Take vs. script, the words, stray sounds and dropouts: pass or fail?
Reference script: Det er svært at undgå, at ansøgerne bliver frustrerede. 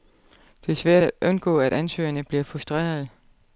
pass